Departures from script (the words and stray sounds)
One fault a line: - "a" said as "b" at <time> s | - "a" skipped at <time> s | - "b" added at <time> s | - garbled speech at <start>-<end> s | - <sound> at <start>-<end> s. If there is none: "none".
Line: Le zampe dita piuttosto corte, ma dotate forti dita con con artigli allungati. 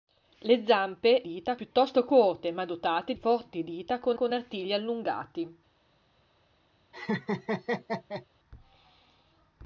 - laugh at 6.9-8.3 s